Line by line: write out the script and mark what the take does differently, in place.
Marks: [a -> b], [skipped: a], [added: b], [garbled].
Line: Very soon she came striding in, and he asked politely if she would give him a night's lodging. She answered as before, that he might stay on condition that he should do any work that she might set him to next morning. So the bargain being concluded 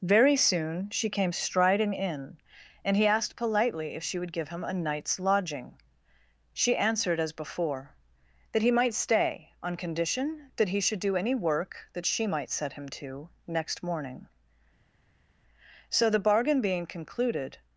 Very soon she came striding in, and he asked politely if she would give him a night's lodging. She answered as before, that he might stay on condition that he should do any work that she might set him to next morning. So the bargain being concluded